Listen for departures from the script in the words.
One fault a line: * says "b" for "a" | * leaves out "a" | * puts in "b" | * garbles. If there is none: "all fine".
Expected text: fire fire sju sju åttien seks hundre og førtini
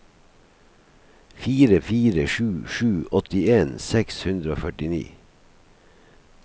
all fine